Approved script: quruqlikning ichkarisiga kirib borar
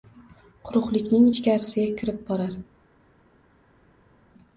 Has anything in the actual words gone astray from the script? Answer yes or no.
no